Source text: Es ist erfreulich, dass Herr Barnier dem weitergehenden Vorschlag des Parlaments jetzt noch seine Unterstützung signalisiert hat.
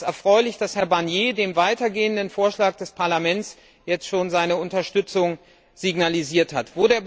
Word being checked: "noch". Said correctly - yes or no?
no